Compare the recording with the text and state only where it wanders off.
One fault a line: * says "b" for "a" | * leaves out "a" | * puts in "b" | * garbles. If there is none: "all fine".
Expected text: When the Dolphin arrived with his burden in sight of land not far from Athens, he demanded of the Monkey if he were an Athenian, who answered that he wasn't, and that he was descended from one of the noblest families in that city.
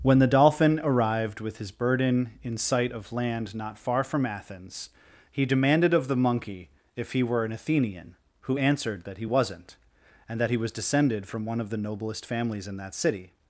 all fine